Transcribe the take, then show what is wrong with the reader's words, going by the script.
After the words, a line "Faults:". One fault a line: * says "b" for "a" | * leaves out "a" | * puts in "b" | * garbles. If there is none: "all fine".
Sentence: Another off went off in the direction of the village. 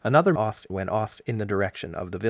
Another off went off in the direction of the village.
Faults:
all fine